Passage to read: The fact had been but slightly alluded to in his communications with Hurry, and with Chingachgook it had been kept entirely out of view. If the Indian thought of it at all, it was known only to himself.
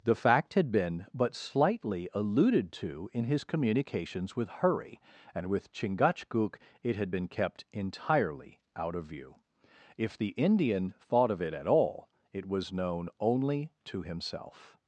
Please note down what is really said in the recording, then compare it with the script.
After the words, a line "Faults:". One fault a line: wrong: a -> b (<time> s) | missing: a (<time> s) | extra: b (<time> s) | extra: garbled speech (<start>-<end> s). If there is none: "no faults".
The fact had been but slightly alluded to in his communications with Hurry, and with Chingachgook it had been kept entirely out of view. If the Indian thought of it at all, it was known only to himself.
Faults:
no faults